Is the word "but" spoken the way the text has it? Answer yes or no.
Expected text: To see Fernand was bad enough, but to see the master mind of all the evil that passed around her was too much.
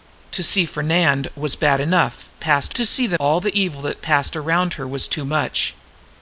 no